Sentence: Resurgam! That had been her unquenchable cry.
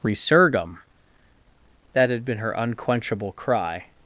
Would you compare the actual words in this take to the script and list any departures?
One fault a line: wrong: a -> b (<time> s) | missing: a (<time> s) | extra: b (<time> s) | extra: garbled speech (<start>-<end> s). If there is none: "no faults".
no faults